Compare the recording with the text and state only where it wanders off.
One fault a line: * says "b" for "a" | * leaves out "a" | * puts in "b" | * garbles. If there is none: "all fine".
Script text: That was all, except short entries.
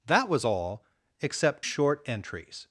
all fine